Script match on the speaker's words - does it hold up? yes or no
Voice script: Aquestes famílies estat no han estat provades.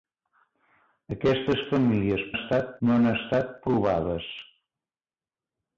yes